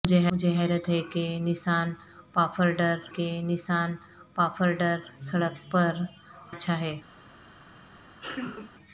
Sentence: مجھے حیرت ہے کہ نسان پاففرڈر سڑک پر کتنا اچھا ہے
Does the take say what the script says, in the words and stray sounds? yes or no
no